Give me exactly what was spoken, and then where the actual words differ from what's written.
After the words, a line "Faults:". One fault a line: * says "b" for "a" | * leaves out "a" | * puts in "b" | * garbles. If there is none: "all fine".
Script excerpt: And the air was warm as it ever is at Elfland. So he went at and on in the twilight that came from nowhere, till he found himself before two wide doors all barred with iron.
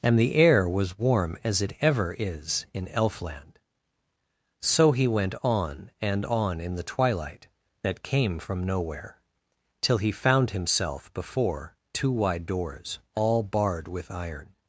And the air was warm as it ever is in Elfland. So he went on and on in the twilight that came from nowhere, till he found himself before two wide doors all barred with iron.
Faults:
* says "in" for "at"
* says "on" for "at"